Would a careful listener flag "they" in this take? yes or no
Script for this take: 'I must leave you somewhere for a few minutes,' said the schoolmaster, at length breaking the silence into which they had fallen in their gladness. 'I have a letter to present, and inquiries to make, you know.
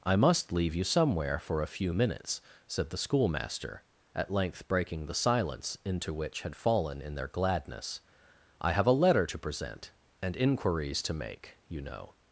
yes